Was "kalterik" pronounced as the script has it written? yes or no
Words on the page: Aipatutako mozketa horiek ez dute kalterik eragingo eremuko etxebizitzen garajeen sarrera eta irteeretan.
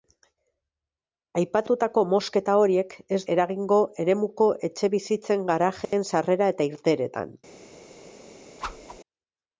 no